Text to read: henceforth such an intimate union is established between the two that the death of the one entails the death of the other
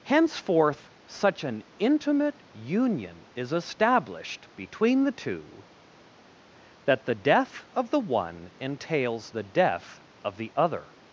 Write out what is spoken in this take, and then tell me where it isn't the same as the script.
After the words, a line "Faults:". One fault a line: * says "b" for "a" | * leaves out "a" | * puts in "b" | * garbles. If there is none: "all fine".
henceforth such an intimate union is established between the two that the death of the one entails the death of the other
Faults:
all fine